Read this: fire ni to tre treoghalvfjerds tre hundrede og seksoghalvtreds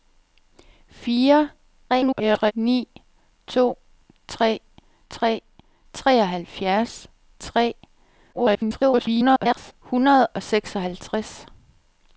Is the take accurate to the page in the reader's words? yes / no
no